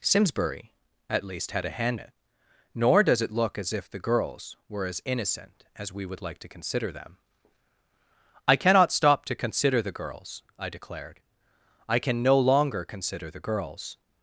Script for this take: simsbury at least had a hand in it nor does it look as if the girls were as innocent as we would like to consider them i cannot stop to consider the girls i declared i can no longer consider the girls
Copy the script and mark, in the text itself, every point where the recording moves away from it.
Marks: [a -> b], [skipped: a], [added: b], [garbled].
simsbury at least had a hand [skipped: in] it nor does it look as if the girls were as innocent as we would like to consider them i cannot stop to consider the girls i declared i can no longer consider the girls